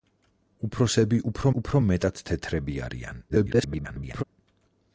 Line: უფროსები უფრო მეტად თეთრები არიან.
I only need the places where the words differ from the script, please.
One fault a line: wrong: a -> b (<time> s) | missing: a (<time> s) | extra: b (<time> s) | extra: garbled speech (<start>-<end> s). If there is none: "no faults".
extra: უფრო (1.6 s)
extra: garbled speech (3.3-4.2 s)